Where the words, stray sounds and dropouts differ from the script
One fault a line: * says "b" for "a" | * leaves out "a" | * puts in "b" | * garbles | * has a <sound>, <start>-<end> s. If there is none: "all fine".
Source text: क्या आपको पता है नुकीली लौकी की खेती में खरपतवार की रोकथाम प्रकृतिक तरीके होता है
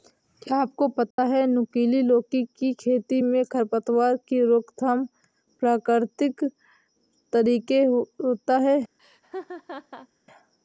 * has a dropout, 1.1-1.2 s
* has a laugh, 9.0-10.1 s